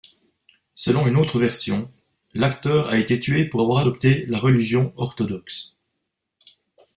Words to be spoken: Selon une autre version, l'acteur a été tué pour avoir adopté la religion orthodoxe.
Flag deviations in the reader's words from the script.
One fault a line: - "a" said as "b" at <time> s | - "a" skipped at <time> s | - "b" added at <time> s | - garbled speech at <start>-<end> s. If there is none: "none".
none